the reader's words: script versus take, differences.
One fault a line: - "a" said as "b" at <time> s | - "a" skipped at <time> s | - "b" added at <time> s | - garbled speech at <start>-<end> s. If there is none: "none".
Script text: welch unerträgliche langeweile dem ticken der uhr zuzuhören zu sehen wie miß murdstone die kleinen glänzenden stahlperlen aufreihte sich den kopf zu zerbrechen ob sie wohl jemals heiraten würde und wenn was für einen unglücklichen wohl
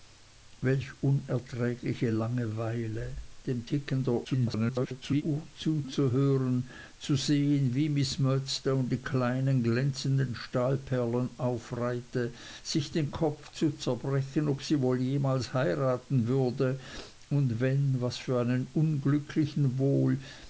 - garbled speech at 4.2-5.2 s